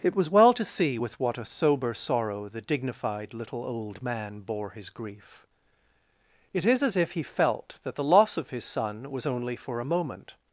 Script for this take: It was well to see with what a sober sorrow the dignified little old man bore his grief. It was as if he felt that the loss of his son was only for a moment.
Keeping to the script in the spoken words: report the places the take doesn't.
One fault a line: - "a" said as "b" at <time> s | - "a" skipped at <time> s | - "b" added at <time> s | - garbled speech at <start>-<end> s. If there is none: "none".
- "was" said as "is" at 6.6 s